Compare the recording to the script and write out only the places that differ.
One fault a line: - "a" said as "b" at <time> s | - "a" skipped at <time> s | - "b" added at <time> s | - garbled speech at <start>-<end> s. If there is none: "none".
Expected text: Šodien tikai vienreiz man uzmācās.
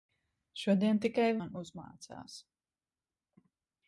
- "vienreiz" skipped at 1.3 s